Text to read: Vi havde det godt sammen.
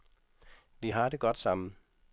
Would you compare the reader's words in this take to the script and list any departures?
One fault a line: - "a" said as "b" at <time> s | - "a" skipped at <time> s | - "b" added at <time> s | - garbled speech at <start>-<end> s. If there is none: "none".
- "havde" said as "har" at 0.9 s